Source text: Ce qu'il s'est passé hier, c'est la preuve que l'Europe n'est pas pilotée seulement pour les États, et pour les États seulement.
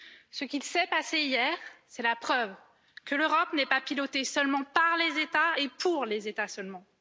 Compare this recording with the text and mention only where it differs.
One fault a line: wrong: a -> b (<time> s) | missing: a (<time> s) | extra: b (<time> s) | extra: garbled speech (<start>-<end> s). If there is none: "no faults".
wrong: pour -> par (4.6 s)